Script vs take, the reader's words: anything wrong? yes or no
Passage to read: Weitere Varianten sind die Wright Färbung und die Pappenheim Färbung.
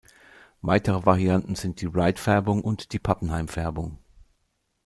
no